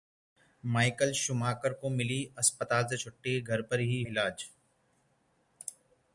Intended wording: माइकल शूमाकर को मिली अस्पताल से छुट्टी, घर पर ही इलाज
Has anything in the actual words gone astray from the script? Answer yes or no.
no